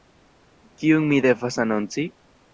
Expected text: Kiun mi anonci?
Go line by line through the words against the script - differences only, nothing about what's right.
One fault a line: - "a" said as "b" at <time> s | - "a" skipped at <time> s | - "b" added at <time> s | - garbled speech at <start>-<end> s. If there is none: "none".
- "devas" added at 1.3 s